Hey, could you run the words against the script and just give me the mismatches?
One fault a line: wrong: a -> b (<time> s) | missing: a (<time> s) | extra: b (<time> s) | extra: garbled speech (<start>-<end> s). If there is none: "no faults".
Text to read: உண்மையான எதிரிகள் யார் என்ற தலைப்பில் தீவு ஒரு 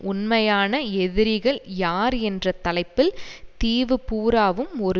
extra: பூராவும் (4.1 s)